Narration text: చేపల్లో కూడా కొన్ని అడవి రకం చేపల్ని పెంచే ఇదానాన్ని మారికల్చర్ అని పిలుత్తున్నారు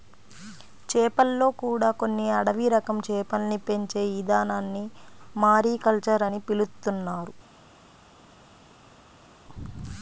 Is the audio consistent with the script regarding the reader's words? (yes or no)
yes